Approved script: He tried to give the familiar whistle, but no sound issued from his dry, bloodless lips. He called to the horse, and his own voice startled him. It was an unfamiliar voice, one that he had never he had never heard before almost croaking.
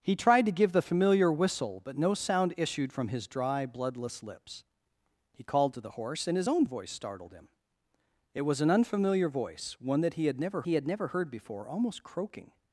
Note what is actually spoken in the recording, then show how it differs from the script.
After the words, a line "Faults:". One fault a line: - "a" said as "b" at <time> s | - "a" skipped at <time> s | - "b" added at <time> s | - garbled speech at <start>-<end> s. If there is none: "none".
He tried to give the familiar whistle, but no sound issued from his dry, bloodless lips. He called to the horse, and his own voice startled him. It was an unfamiliar voice, one that he had never he had never heard before almost croaking.
Faults:
none